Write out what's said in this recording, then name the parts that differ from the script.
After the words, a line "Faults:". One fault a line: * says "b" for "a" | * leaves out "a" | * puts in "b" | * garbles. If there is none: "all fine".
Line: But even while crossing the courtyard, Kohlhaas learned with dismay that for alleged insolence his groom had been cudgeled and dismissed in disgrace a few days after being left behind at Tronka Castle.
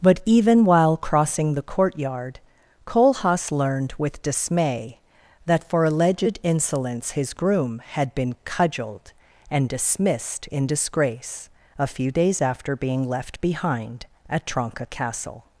But even while crossing the courtyard, Kohlhaas learned with dismay that for alleged insolence his groom had been cudgeled and dismissed in disgrace a few days after being left behind at Tronka Castle.
Faults:
all fine